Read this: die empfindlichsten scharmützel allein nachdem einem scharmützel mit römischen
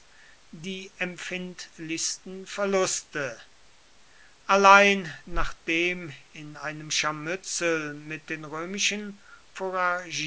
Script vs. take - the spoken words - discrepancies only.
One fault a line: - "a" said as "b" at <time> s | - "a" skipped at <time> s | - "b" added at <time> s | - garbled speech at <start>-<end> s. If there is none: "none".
- "scharmützel" said as "verluste" at 2.5 s
- "in" added at 6.3 s
- "den" added at 8.3 s